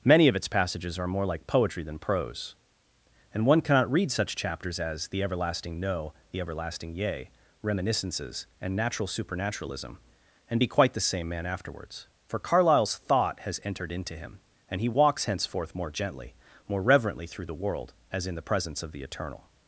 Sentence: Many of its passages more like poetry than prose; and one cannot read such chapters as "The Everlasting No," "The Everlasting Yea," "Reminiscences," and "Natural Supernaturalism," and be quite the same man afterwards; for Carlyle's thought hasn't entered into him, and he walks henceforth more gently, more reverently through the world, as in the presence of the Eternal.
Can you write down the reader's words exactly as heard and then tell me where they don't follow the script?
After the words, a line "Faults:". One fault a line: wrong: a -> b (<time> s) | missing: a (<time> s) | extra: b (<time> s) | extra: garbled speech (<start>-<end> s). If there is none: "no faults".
Many of its passages are more like poetry than prose; and one cannot read such chapters as "The Everlasting No," "The Everlasting Yea," "Reminiscences," and "Natural Supernaturalism," and be quite the same man afterwards; for Carlyle's thought has entered into him, and he walks henceforth more gently, more reverently through the world, as in the presence of the Eternal.
Faults:
extra: are (1.0 s)
wrong: hasn't -> has (13.4 s)